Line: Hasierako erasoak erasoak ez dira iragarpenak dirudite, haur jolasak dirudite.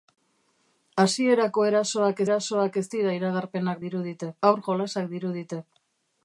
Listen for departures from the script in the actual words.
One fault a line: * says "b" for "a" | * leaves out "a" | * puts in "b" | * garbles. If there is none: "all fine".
all fine